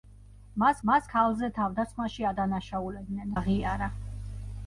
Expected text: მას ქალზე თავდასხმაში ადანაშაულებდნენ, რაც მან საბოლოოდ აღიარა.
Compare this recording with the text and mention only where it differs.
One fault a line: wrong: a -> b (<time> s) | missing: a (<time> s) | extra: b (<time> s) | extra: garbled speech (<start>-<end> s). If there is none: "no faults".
extra: მას (0.9 s)
missing: რაც მან საბოლოოდ (3.4 s)